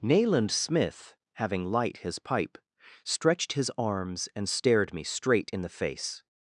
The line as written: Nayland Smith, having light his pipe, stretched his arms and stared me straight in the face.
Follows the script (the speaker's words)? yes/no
yes